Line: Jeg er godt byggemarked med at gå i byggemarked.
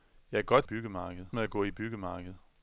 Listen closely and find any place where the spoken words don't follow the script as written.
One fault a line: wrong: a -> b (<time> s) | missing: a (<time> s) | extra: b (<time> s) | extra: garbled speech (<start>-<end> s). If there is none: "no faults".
no faults